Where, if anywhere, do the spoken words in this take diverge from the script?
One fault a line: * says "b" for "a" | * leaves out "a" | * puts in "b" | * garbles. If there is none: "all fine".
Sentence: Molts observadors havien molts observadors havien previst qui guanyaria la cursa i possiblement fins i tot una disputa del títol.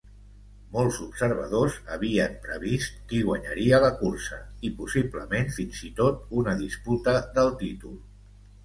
* leaves out "molts observadors havien"